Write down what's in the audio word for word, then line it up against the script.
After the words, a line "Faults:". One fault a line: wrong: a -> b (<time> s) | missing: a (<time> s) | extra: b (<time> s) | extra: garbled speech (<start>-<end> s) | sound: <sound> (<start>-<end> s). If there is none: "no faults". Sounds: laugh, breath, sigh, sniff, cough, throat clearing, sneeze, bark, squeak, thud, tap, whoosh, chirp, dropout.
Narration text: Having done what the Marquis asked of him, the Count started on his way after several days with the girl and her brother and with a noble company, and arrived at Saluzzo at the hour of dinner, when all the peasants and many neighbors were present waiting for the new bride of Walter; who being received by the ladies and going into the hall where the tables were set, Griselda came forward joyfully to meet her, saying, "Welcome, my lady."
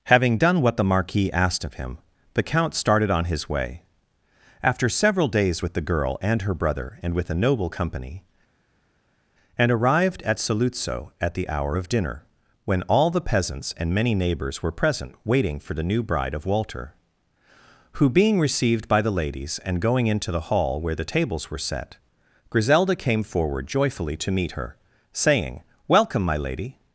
Having done what the Marquis asked of him, the Count started on his way after several days with the girl and her brother and with a noble company, and arrived at Saluzzo at the hour of dinner, when all the peasants and many neighbors were present waiting for the new bride of Walter; who being received by the ladies and going into the hall where the tables were set, Griselda came forward joyfully to meet her, saying, "Welcome, my lady."
Faults:
no faults